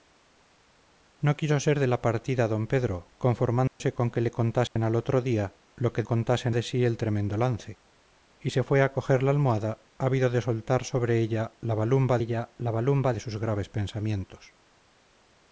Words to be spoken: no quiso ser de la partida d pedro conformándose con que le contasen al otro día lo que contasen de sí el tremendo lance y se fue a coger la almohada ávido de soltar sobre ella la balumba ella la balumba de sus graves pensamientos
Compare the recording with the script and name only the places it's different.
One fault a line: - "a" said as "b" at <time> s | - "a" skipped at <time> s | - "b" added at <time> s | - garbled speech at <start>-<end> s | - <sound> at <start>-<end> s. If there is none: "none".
- dropout at 3.7-3.8 s
- dropout at 4.7-4.8 s